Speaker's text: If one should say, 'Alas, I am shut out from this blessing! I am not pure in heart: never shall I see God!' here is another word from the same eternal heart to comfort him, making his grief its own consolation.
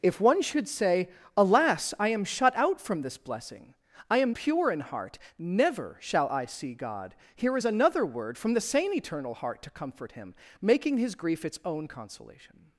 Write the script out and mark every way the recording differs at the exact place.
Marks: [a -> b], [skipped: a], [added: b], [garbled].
If one should say, 'Alas, I am shut out from this blessing! I am [skipped: not] pure in heart: never shall I see God!' here is another word from the same eternal heart to comfort him, making his grief its own consolation.